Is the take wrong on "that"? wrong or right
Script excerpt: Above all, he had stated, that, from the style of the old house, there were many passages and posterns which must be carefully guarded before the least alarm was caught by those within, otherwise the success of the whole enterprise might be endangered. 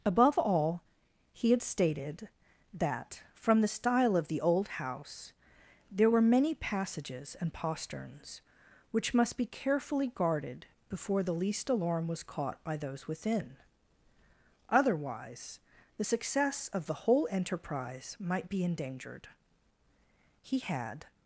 right